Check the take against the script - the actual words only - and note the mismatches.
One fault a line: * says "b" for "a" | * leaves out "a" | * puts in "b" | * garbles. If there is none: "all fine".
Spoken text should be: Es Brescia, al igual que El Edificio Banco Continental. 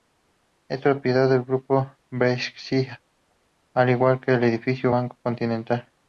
* puts in "propiedad del Grupo"